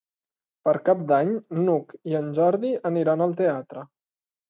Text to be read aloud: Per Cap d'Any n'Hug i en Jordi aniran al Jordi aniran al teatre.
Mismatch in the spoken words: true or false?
true